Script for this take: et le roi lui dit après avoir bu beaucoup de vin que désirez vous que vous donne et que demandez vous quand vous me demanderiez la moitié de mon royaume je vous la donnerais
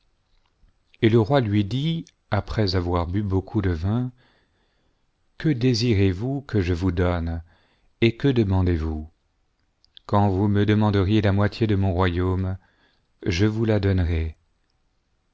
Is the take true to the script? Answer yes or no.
no